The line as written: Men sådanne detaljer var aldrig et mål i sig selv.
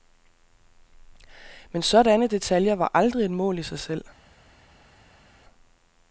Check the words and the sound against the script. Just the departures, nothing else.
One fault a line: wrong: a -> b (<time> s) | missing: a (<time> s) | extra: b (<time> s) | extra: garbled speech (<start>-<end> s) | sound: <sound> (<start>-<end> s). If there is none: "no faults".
no faults